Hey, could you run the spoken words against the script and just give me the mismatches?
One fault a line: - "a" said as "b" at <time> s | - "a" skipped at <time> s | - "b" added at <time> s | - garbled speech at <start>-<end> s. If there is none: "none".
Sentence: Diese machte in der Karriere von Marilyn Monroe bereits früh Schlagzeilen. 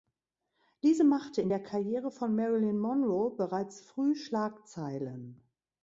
none